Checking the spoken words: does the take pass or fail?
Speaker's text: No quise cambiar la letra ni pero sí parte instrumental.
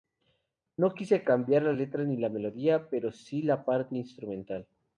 fail